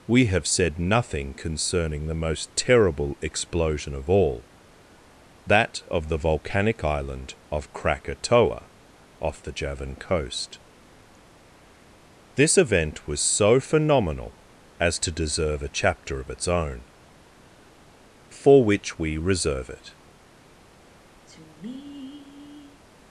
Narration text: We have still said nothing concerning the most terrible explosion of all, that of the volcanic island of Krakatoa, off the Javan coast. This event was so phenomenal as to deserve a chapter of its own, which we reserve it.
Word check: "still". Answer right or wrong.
wrong